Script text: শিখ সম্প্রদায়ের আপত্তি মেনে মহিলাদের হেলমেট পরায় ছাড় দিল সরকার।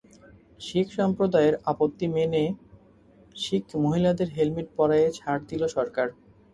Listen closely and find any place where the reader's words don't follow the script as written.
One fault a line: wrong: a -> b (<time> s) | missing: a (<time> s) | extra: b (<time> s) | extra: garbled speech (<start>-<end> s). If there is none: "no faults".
extra: শিখ (3.4 s)